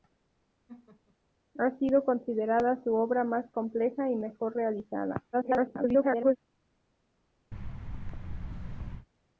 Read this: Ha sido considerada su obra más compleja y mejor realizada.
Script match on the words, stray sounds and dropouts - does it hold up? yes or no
no